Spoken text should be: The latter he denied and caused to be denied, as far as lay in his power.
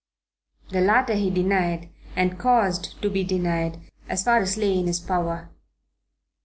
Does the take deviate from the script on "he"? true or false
false